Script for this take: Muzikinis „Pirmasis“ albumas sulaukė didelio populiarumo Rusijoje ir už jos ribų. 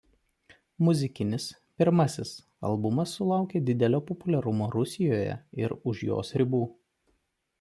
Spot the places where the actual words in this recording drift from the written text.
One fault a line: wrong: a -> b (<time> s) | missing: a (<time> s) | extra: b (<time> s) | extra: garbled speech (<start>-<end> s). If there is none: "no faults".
no faults